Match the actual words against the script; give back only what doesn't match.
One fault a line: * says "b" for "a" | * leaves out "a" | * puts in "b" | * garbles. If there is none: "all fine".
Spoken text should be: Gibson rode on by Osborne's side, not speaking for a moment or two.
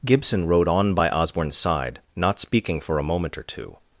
all fine